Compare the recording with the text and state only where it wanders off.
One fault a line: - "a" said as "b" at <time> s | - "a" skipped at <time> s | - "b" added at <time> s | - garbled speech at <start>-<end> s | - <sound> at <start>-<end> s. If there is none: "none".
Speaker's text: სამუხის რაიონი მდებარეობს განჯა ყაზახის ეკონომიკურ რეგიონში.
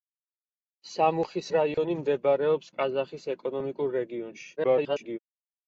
- dropout at 1.7-1.8 s
- "განჯა" skipped at 2.7 s
- garbled speech at 4.6-5.2 s